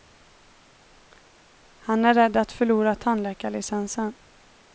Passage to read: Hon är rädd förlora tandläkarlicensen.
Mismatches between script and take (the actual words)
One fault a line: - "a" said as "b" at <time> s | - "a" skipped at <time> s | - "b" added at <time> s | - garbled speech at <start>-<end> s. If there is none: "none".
- "Hon" said as "Han" at 1.8 s
- "att" added at 2.4 s